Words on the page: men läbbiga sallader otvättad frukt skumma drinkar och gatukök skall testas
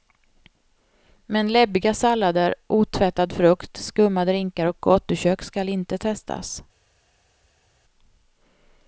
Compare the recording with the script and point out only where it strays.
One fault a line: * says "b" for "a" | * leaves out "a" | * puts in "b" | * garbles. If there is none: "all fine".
* puts in "inte"